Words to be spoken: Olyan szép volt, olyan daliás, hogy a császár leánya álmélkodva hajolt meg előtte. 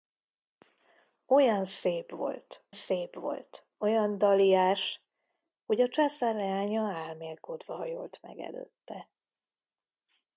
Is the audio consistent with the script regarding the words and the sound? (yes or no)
no